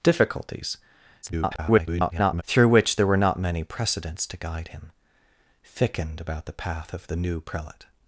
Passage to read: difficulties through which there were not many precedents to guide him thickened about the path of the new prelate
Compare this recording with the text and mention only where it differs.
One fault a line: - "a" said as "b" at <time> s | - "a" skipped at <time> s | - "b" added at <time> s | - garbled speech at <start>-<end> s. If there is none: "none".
- garbled speech at 1.2-2.4 s